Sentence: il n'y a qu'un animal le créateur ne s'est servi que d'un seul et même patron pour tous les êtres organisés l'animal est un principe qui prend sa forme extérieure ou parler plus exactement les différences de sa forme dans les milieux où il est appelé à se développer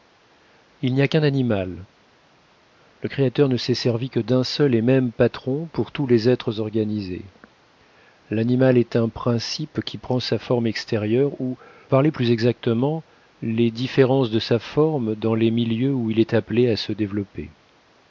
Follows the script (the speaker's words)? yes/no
yes